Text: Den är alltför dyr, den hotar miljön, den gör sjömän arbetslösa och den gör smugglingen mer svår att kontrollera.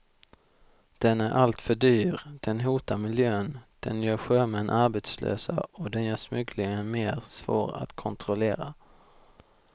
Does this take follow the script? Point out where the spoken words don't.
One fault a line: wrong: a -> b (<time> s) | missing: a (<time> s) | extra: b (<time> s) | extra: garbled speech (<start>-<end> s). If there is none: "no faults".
no faults